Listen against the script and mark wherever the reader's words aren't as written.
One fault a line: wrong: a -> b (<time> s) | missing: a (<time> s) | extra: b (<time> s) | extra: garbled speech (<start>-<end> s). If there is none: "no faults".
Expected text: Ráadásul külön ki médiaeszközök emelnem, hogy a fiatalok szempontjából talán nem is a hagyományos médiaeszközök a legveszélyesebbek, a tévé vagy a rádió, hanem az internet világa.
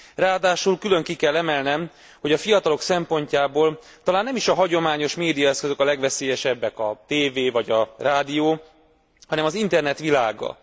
wrong: médiaeszközök -> kell (1.1 s)